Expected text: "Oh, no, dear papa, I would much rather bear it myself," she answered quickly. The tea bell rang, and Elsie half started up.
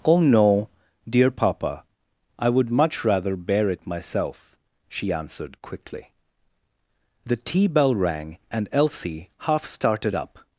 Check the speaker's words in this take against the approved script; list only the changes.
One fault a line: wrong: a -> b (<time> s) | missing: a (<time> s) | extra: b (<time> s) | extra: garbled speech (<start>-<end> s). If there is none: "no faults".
no faults